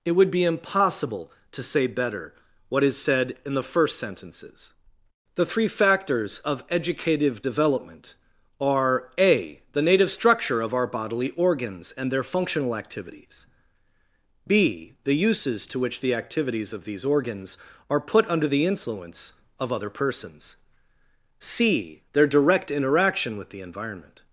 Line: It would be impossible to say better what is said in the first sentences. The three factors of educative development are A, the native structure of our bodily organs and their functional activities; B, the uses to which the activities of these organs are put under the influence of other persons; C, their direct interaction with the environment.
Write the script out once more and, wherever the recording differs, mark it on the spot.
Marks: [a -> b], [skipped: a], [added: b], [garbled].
It would be impossible to say better what is said in the first sentences. The three factors of educative development are A, the native structure of our bodily organs and their functional activities; B, the uses to which the activities of these organs are put under the influence of other persons; C, their direct interaction with the environment.